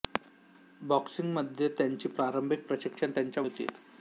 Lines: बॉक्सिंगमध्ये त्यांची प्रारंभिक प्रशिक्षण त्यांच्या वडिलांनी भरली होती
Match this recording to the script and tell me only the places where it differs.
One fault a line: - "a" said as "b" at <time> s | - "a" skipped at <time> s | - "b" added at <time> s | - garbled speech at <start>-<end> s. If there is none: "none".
- "वडिलांनी भरली" skipped at 3.4 s